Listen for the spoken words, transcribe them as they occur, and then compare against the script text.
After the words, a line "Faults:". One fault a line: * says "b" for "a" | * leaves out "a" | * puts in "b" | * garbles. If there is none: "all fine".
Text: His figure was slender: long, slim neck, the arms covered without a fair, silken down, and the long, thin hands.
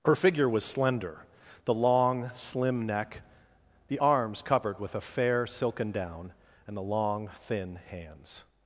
Her figure was slender: the long, slim neck, the arms covered with a fair, silken down, and the long, thin hands.
Faults:
* says "Her" for "His"
* puts in "the"
* says "with" for "without"